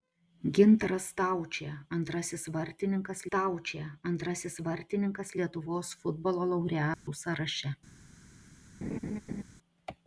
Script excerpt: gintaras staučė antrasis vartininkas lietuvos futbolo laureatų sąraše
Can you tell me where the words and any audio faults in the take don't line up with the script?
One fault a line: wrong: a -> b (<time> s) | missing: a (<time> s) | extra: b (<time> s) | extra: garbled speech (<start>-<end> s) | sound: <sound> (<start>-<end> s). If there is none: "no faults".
extra: staučė antrasis vartininkas (3.3 s)
sound: dropout (6.9-7.1 s)
sound: laugh (8.8-9.4 s)